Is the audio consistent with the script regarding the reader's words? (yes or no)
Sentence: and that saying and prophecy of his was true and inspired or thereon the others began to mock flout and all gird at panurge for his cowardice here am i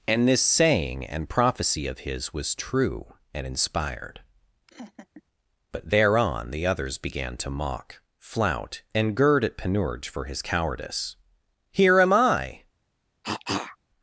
no